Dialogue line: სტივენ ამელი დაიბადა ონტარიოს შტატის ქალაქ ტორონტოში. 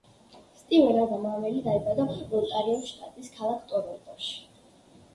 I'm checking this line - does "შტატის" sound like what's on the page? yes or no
yes